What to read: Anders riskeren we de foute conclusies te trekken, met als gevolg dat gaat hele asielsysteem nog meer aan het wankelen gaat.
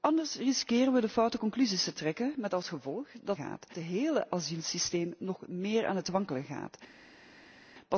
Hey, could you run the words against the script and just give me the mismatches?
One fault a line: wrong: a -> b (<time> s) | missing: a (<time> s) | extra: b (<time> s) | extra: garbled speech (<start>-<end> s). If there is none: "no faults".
no faults